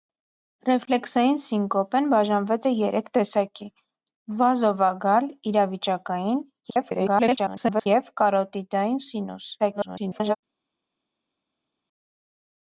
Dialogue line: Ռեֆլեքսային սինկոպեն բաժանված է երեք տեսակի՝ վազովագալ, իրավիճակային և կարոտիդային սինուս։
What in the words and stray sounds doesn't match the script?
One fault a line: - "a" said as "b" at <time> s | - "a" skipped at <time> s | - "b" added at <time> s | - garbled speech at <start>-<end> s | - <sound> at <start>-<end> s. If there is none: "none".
- garbled speech at 6.7-7.9 s
- garbled speech at 9.6-10.4 s